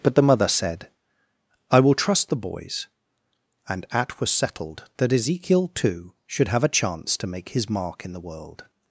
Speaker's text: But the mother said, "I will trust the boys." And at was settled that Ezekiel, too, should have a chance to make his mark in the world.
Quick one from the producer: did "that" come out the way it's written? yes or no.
yes